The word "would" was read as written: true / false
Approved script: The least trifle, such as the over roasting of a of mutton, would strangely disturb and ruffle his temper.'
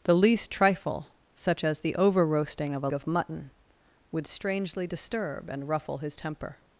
true